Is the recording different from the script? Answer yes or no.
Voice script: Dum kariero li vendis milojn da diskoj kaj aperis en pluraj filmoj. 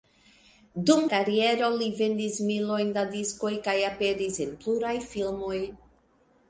no